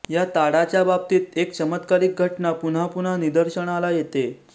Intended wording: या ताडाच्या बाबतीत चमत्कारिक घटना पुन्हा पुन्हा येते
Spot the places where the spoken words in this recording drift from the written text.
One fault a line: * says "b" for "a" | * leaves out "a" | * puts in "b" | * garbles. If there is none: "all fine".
* puts in "एक"
* puts in "निदर्शनाला"